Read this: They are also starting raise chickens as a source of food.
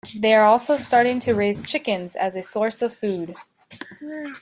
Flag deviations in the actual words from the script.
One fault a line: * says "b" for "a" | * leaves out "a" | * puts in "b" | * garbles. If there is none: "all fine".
* puts in "to"